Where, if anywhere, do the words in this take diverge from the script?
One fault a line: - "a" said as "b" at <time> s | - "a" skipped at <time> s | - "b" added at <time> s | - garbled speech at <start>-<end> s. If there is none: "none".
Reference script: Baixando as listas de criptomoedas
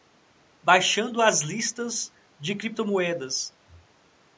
none